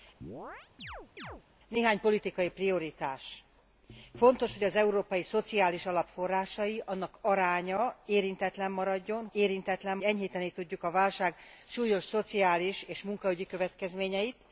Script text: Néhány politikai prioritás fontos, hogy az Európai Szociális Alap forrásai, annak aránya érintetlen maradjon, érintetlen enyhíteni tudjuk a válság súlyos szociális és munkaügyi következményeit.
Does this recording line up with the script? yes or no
yes